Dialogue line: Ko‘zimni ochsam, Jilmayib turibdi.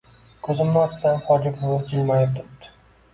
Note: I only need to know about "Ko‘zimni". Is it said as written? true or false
true